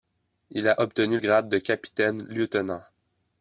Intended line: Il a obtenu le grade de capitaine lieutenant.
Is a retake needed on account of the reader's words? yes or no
yes